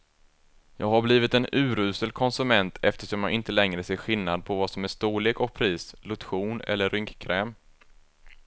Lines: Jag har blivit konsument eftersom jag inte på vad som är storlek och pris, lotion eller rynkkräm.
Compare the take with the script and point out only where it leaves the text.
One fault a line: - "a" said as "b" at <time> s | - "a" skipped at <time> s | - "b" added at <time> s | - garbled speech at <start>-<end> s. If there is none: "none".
- "en urusel" added at 1.3 s
- "längre ser skillnad" added at 3.5 s